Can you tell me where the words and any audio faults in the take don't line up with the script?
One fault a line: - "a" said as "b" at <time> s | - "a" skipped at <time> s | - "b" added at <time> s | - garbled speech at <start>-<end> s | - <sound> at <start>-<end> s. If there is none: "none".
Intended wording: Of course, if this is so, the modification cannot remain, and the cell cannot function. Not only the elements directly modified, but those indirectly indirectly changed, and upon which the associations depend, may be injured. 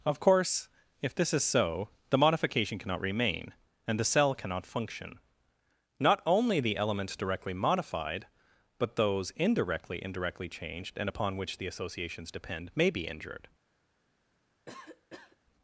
- cough at 14.7-15.4 s